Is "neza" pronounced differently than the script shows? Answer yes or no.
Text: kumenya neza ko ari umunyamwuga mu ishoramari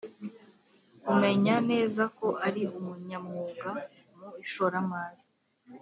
no